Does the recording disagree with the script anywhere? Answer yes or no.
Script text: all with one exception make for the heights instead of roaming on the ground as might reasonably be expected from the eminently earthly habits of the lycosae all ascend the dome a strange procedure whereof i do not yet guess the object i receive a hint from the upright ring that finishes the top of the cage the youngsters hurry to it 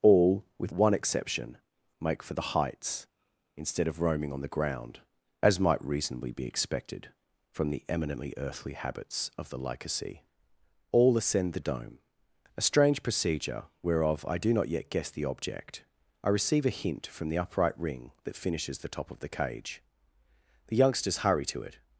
no